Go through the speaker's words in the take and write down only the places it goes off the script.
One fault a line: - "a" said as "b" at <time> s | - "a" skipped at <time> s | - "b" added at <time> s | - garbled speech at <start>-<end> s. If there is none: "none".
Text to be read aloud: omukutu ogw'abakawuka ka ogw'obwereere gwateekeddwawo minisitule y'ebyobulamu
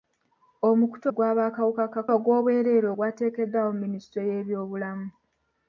none